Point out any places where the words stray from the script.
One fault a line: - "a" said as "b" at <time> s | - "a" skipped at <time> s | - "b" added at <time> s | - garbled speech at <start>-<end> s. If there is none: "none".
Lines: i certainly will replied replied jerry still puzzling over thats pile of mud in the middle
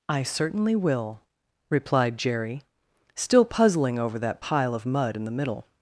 - "replied" skipped at 2.2 s
- "thats" said as "that" at 4.2 s